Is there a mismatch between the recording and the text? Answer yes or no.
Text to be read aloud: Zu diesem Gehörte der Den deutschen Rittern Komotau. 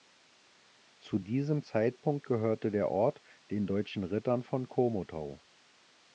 yes